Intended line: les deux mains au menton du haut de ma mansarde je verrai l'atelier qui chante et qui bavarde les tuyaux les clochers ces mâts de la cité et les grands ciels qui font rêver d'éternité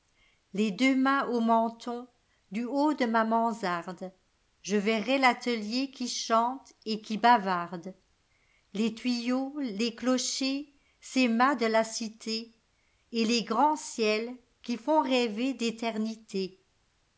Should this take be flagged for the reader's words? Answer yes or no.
no